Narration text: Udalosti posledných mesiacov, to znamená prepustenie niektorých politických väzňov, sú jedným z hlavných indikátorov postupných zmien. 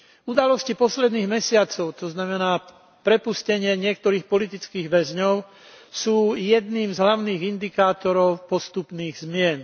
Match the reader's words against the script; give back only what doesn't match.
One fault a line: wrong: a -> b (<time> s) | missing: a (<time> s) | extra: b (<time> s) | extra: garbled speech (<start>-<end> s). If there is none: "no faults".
no faults